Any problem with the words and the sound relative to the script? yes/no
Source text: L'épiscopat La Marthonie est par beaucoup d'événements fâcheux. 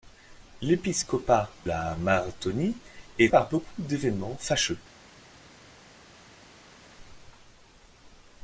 no